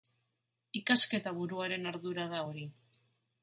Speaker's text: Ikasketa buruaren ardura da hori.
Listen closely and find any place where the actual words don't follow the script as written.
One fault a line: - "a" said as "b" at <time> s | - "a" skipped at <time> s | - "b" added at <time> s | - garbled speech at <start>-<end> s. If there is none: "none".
none